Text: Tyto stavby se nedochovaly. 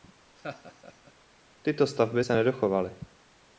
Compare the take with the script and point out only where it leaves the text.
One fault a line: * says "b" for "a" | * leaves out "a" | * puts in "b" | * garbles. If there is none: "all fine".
all fine